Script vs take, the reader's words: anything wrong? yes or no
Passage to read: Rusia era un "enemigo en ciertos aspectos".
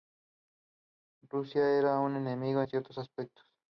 no